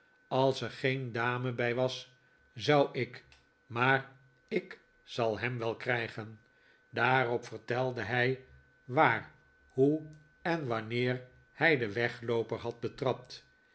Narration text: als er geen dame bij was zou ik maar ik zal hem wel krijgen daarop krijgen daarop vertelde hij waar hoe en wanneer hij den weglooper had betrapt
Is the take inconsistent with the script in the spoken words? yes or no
yes